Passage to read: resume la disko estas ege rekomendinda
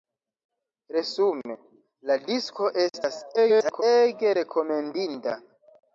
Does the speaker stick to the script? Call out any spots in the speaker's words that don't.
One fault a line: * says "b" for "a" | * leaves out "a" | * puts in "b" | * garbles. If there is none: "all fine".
* garbles